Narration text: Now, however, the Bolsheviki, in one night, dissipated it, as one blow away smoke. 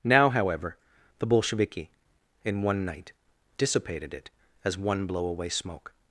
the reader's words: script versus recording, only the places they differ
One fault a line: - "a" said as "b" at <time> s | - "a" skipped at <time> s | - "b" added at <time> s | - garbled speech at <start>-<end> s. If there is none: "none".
none